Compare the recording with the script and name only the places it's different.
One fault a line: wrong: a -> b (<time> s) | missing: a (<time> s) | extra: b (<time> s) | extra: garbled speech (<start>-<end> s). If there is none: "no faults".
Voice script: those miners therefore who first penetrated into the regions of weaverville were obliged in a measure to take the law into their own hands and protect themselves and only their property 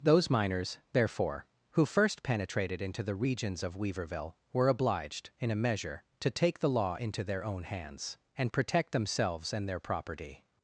missing: only (9.7 s)